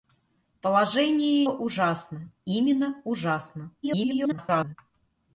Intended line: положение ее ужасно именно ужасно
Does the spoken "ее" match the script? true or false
false